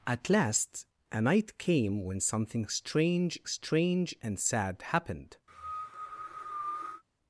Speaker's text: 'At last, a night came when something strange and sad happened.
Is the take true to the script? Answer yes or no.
no